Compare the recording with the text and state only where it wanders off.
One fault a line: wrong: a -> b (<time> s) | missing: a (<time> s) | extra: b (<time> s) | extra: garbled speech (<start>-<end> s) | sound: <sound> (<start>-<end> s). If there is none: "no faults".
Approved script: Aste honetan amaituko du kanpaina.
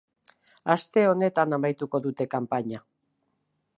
wrong: du -> dute (2.1 s)